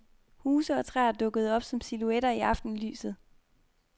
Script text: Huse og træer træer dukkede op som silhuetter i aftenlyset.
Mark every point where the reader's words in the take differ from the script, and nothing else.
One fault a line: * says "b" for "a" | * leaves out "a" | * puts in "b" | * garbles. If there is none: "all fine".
* leaves out "træer"